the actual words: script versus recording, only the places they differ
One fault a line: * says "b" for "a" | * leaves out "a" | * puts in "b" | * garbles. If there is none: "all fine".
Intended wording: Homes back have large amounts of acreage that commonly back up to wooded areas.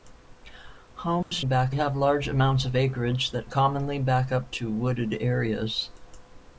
all fine